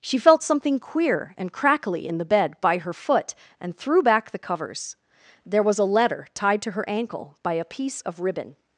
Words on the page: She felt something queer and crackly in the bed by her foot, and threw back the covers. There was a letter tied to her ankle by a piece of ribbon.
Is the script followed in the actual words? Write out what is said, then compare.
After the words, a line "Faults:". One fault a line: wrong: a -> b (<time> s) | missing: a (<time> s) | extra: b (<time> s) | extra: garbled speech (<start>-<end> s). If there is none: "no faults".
She felt something queer and crackly in the bed by her foot, and threw back the covers. There was a letter tied to her ankle by a piece of ribbon.
Faults:
no faults